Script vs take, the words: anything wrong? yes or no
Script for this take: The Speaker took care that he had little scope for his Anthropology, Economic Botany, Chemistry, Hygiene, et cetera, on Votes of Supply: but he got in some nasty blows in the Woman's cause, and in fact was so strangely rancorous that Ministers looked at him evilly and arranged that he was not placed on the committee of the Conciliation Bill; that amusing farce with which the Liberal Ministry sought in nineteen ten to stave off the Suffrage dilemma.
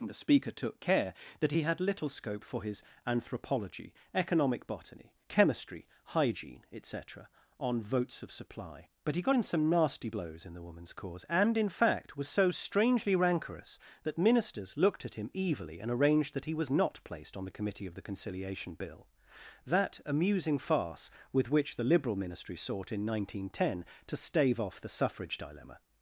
no